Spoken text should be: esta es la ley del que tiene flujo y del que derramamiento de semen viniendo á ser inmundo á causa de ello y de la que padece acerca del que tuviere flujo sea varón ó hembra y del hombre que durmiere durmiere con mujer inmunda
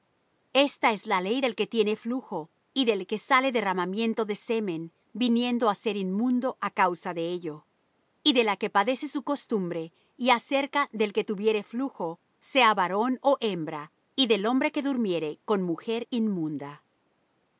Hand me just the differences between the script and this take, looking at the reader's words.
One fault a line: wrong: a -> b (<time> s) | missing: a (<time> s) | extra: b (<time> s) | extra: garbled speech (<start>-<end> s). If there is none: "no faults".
extra: sale (3.2 s)
extra: su costumbre y (9.1 s)
missing: durmiere (15.4 s)